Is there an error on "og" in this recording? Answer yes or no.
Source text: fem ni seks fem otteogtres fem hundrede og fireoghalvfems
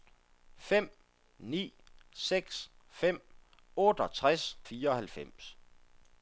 yes